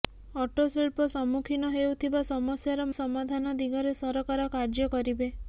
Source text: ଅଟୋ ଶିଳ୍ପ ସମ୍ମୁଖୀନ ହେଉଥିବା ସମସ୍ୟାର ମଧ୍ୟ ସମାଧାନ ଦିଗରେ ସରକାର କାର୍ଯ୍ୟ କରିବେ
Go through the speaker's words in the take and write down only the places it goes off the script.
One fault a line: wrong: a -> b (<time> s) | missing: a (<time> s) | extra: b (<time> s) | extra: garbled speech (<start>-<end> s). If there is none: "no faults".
missing: ମଧ୍ୟ (2.9 s)